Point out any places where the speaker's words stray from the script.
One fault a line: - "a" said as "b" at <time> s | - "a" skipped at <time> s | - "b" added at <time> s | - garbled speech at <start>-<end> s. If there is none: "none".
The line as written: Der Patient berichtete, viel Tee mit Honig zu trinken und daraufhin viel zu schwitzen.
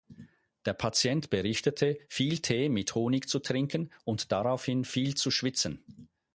none